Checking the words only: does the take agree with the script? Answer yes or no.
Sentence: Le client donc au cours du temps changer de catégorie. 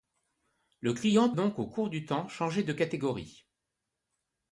yes